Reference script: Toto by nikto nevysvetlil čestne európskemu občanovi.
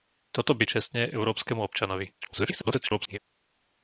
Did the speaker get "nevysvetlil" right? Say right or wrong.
wrong